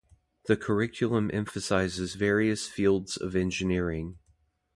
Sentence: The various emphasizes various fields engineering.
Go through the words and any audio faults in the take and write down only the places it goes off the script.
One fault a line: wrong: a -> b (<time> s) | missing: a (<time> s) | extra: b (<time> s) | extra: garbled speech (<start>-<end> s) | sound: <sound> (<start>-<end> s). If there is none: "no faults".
wrong: various -> curriculum (0.6 s)
extra: of (3.2 s)